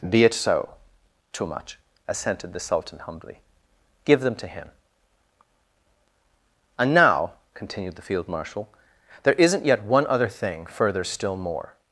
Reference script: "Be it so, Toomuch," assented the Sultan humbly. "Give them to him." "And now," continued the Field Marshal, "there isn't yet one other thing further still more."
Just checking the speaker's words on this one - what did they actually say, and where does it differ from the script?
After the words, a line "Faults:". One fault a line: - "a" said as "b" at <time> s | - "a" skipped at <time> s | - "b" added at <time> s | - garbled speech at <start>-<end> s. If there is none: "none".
"Be it so, Toomuch," assented the Sultan humbly. "Give them to him." "And now," continued the Field Marshal, "there isn't yet one other thing further still more."
Faults:
none